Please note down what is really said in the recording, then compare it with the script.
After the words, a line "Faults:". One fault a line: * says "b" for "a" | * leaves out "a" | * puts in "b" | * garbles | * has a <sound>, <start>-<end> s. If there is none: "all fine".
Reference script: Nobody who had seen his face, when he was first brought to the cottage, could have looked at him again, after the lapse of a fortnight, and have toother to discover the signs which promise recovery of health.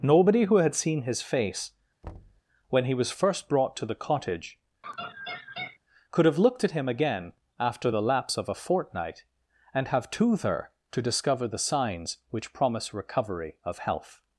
Nobody who had seen his face, when he was first brought to the cottage, could have looked at him again, after the lapse of a fortnight, and have toother to discover the signs which promise recovery of health.
Faults:
* has a thud, 2.0-2.4 s
* has a laugh, 4.8-5.8 s